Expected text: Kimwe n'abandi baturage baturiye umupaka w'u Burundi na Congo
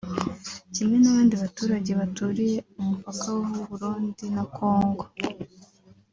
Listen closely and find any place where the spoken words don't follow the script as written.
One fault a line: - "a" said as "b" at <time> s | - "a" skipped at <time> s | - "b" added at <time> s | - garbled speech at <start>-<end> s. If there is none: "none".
none